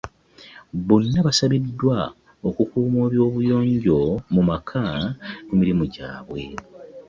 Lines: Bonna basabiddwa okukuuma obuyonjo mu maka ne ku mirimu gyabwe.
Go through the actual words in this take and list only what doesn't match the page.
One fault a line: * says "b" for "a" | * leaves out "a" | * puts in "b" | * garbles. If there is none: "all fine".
* leaves out "ne"